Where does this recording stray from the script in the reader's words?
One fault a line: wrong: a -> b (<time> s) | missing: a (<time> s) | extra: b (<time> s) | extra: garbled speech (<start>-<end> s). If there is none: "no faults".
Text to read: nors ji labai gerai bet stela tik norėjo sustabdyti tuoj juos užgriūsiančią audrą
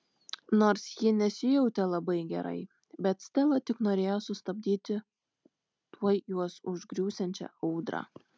extra: nesijautė (1.2 s)